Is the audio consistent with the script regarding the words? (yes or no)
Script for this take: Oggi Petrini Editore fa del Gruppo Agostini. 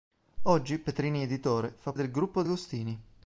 yes